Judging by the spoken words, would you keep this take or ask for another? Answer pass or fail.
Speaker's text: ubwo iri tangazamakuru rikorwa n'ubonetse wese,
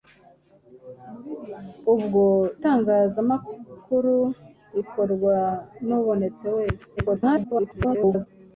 fail